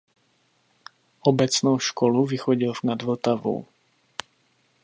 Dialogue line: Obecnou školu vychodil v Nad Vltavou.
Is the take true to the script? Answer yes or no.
yes